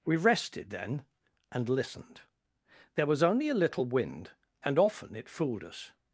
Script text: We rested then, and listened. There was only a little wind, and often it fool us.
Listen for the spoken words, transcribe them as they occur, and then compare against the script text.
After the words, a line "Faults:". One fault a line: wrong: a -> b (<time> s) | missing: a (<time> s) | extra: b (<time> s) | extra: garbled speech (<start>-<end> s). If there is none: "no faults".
We rested then, and listened. There was only a little wind, and often it fooled us.
Faults:
wrong: fool -> fooled (5.3 s)